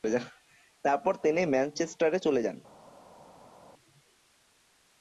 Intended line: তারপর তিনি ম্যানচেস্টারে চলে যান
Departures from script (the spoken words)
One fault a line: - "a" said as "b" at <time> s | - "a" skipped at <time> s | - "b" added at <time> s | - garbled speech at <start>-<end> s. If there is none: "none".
none